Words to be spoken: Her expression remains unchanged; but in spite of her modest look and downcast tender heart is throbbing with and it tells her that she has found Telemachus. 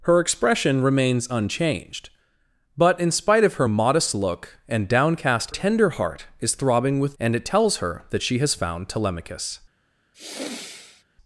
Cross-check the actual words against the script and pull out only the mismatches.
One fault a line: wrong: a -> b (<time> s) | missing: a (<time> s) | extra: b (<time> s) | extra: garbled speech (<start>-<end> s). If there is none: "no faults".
no faults